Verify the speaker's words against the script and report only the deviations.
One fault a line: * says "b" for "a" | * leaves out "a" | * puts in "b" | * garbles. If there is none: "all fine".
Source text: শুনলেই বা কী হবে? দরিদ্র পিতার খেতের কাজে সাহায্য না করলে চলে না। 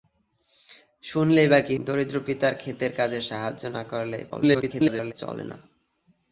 * leaves out "হবে"
* garbles